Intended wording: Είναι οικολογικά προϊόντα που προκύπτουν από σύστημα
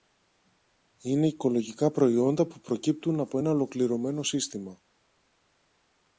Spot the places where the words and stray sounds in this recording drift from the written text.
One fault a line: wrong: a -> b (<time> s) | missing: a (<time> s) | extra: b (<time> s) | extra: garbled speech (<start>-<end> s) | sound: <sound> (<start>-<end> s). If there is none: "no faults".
extra: ένα ολοκληρωμένο (3.4 s)